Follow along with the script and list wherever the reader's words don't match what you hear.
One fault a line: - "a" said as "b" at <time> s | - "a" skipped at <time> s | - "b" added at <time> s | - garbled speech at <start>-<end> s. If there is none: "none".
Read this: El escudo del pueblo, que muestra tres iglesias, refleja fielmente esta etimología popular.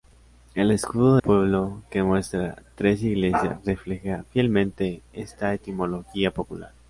- "del" skipped at 1.2 s